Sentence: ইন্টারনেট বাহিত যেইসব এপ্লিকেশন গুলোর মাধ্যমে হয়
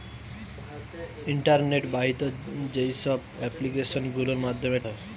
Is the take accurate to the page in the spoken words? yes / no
yes